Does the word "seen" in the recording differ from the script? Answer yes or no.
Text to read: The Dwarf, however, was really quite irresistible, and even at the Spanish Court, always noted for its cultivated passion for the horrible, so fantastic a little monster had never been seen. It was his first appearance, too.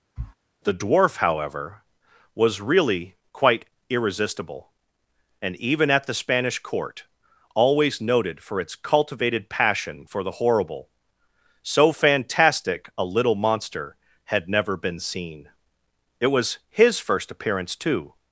no